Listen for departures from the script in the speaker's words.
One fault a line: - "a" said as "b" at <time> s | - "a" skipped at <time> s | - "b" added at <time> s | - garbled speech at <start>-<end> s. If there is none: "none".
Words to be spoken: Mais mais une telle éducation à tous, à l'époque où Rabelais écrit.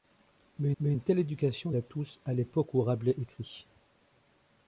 none